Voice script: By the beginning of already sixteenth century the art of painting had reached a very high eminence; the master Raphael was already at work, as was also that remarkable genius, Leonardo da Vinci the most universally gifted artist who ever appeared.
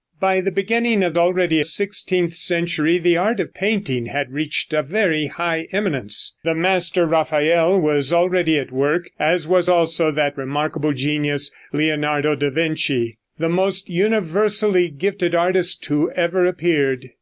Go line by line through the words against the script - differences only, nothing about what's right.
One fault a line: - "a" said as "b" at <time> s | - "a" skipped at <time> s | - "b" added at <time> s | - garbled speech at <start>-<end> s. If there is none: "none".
none